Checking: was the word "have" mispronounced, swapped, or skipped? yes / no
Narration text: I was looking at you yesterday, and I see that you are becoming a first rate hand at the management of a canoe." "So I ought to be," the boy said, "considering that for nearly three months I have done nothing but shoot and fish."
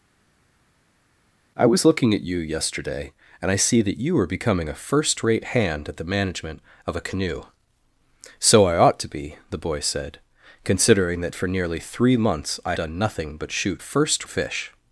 yes